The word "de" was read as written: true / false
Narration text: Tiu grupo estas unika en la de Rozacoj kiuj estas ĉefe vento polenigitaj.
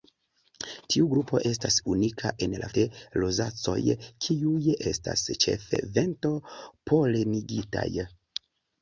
true